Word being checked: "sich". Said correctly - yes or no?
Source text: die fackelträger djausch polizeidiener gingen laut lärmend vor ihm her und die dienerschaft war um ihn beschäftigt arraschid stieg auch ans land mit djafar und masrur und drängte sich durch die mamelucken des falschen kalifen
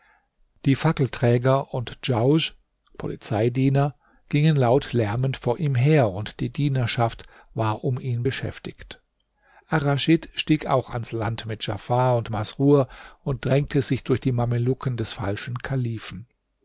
yes